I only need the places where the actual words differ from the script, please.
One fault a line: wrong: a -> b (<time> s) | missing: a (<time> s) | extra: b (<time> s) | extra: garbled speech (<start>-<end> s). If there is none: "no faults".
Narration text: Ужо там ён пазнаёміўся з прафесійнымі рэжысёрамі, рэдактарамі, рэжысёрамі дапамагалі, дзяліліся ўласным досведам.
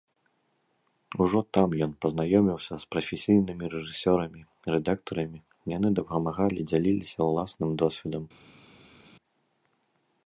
wrong: рэжысёрамі -> яны (5.8 s)